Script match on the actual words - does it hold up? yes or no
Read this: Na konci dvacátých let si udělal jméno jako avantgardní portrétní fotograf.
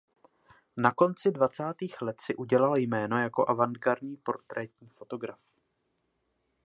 yes